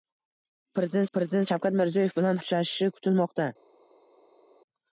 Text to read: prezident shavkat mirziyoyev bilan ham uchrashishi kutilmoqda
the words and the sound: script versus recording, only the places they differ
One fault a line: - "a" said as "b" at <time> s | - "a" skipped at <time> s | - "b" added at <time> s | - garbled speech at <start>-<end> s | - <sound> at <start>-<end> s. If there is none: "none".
- "prezident" added at 1.2 s
- "ham" skipped at 2.4 s